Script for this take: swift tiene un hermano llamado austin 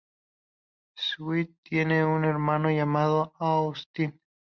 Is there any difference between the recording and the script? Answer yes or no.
no